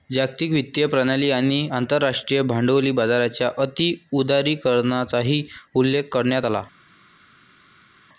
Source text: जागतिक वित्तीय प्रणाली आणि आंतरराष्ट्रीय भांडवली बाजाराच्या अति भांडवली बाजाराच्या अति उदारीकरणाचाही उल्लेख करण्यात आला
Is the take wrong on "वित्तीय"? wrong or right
right